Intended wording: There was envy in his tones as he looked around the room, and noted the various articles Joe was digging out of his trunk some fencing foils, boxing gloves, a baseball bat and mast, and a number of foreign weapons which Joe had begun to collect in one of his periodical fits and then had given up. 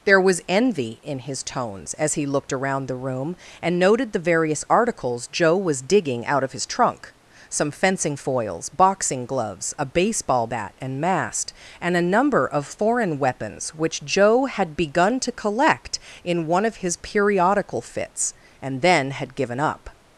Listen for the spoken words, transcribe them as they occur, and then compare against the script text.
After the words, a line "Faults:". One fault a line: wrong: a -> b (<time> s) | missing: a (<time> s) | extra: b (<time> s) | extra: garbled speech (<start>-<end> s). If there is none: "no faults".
There was envy in his tones as he looked around the room, and noted the various articles Joe was digging out of his trunk some fencing foils, boxing gloves, a baseball bat and mast, and a number of foreign weapons which Joe had begun to collect in one of his periodical fits and then had given up.
Faults:
no faults